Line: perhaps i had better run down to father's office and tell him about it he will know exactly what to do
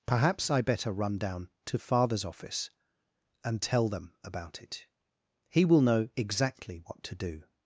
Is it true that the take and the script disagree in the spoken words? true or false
true